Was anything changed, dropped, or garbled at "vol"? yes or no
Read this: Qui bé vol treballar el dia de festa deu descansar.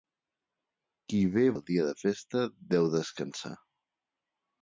yes